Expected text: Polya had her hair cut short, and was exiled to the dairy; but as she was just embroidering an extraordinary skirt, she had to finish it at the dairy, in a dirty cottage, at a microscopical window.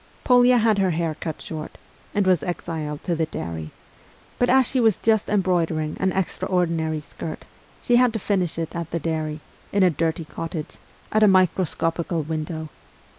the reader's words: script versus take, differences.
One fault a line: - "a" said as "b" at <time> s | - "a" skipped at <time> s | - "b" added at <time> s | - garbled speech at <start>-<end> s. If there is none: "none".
none